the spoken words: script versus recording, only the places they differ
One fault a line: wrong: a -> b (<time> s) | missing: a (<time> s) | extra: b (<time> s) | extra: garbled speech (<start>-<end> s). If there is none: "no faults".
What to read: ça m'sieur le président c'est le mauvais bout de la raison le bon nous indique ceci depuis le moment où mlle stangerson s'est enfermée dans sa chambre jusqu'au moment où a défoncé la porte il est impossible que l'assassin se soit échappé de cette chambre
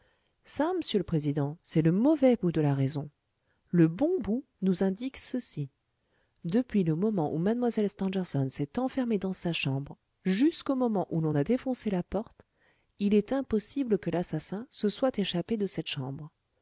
extra: bout (4.2 s)
extra: l'on (11.2 s)